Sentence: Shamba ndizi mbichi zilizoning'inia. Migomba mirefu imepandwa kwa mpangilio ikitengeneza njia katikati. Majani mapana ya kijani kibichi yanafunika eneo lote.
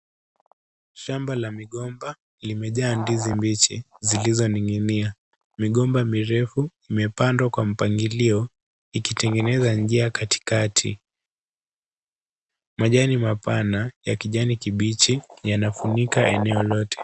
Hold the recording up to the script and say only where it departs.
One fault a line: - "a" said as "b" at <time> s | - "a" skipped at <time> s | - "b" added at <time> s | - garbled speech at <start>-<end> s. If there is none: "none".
- "la migomba limejaa" added at 1.4 s